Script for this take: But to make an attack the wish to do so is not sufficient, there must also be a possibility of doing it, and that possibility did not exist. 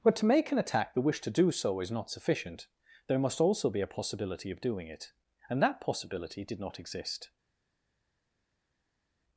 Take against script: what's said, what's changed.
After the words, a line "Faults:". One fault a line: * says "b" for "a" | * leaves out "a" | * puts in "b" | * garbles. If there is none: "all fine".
But to make an attack the wish to do so is not sufficient, there must also be a possibility of doing it, and that possibility did not exist.
Faults:
all fine